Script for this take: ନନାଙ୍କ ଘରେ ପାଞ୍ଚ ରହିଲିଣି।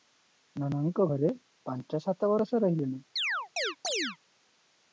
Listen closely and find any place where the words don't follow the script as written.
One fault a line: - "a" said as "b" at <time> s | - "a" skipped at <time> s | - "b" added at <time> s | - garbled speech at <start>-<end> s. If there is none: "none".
- "ସାତ ବରଷ" added at 2.1 s